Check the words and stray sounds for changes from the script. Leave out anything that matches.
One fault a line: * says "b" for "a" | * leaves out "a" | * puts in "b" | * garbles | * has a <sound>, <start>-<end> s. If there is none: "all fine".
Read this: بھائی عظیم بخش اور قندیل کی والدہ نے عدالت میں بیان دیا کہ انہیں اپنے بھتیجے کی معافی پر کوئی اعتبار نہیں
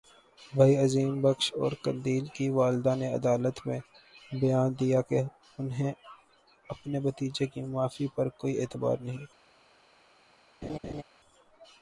* has a laugh, 10.6-11.0 s